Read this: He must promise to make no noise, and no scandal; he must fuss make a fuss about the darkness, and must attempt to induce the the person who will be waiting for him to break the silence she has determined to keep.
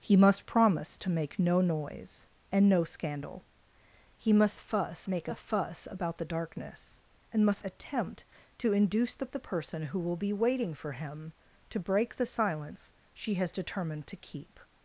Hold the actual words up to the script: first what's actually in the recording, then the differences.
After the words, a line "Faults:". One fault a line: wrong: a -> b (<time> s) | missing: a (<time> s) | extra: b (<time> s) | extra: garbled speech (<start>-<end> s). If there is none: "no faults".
He must promise to make no noise, and no scandal; he must fuss make a fuss about the darkness, and must attempt to induce the the person who will be waiting for him to break the silence she has determined to keep.
Faults:
no faults